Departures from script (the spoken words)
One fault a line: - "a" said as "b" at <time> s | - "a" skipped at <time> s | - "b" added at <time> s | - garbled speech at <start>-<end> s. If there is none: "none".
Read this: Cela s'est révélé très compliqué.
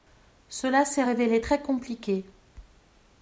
none